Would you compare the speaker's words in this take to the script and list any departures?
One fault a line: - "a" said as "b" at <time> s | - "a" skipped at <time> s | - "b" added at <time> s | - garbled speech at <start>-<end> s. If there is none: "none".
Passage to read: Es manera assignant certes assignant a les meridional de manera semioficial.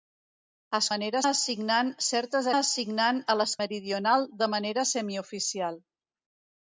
none